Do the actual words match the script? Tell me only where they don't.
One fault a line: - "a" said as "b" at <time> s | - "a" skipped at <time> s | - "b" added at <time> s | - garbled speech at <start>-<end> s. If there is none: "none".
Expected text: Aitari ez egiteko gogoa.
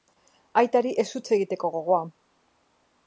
- "huts" added at 1.1 s